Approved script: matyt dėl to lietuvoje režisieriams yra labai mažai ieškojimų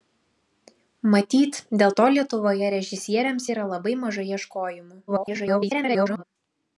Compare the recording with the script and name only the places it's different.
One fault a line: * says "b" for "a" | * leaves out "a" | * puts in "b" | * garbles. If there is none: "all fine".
* garbles